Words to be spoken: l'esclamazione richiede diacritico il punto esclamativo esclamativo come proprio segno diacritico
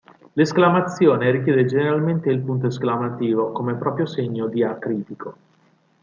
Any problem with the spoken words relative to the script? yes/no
yes